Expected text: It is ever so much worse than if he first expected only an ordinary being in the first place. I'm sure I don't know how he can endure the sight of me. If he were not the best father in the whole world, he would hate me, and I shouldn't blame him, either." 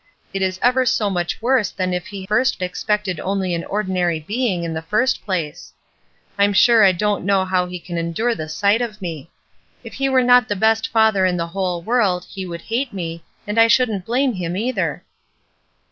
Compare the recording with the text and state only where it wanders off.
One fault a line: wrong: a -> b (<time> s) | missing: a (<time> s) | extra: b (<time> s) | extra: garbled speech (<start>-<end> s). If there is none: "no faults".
no faults